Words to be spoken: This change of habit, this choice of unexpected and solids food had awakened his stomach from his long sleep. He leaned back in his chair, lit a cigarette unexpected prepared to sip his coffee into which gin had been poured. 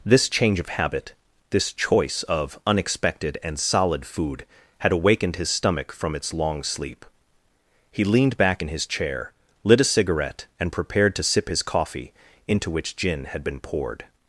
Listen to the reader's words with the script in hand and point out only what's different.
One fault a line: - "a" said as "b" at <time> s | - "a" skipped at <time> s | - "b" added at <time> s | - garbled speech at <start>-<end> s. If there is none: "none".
- "solids" said as "solid" at 3.6 s
- "his" said as "its" at 6.2 s
- "unexpected" said as "and" at 10.6 s